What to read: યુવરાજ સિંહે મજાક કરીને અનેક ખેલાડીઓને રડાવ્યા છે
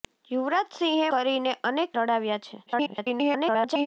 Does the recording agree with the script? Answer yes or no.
no